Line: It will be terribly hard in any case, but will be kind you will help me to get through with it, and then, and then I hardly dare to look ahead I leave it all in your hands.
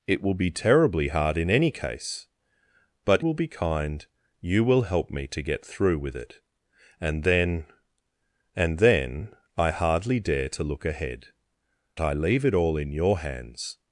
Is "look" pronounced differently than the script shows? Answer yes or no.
no